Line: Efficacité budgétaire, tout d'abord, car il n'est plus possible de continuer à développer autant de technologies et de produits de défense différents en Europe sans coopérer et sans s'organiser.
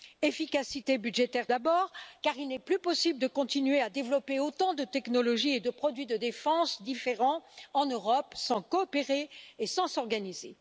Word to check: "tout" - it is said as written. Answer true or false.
false